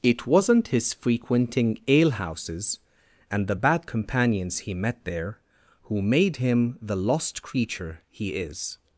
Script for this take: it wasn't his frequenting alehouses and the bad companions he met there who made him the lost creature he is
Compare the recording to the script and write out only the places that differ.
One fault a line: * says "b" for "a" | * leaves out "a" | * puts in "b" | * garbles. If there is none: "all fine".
all fine